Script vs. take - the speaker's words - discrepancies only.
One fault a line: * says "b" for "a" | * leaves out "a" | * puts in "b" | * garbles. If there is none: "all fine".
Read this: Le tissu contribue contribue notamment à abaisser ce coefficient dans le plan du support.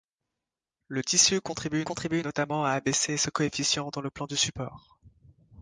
all fine